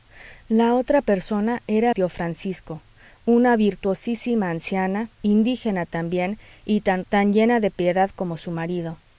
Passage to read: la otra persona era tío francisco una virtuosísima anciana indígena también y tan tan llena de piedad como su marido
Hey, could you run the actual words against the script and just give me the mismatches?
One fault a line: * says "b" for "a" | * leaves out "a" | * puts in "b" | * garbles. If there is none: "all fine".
all fine